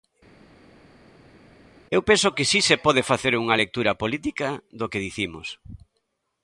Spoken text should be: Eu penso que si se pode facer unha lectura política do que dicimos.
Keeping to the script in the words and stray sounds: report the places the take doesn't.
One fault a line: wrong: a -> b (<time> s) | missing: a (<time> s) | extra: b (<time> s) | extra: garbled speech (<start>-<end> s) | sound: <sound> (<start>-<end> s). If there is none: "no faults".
no faults